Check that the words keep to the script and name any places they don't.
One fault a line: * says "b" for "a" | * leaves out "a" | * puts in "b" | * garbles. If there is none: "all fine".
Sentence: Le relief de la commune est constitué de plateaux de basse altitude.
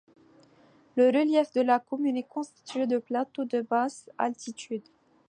all fine